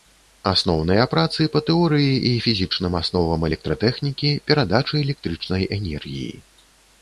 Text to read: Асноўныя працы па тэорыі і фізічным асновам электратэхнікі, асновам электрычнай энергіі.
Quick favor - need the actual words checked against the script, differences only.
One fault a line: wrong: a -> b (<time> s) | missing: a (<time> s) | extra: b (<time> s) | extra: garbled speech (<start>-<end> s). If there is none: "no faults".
wrong: асновам -> перадачы (4.5 s)